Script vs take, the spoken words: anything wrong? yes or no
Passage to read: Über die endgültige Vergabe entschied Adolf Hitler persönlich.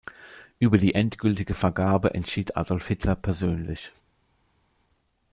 no